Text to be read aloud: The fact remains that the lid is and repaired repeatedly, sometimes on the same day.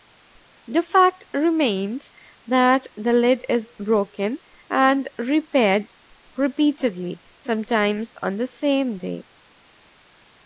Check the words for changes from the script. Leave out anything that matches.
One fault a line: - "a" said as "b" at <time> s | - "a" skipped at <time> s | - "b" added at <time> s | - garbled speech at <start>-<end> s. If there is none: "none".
- "broken" added at 3.8 s